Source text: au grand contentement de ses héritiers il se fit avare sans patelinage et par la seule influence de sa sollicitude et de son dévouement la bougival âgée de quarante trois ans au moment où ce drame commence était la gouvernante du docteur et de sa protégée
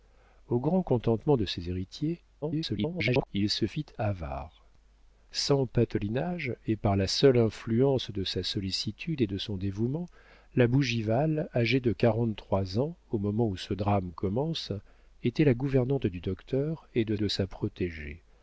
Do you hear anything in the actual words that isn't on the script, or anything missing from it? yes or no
yes